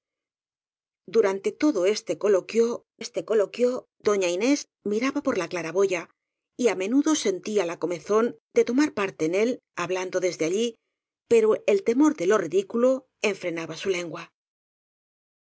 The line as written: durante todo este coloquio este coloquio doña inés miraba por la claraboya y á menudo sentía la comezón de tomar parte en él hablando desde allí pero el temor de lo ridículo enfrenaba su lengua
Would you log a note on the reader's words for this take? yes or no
no